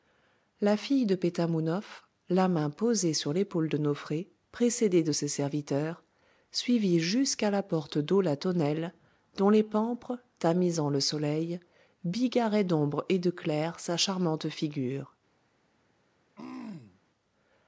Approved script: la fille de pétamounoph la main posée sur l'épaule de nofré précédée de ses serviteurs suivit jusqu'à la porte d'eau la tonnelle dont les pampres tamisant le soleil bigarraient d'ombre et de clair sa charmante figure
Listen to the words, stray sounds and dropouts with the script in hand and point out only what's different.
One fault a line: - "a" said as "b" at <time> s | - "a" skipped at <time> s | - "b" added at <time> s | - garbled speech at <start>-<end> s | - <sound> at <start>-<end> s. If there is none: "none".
- throat clearing at 16.4-17.0 s